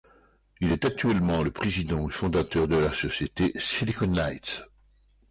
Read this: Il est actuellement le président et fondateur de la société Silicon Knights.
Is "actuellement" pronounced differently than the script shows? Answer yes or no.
no